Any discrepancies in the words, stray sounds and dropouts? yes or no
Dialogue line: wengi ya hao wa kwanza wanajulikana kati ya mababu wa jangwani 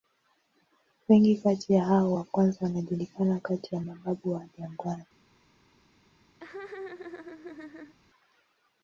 yes